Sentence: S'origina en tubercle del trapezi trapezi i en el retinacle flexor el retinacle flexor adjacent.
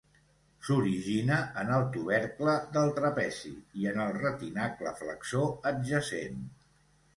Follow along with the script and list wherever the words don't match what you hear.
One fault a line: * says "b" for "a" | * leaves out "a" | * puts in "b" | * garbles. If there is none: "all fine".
* puts in "el"
* leaves out "trapezi"
* leaves out "el retinacle flexor"